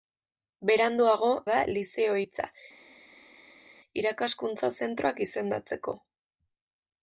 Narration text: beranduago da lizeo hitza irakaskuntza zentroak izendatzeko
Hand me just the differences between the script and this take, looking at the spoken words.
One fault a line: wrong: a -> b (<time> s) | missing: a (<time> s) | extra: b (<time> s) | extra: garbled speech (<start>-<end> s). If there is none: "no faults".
no faults